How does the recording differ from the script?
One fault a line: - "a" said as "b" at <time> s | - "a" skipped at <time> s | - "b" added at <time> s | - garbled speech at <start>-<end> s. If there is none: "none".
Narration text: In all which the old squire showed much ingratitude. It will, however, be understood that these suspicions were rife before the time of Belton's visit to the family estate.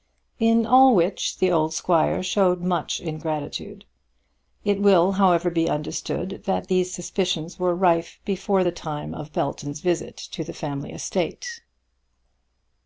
none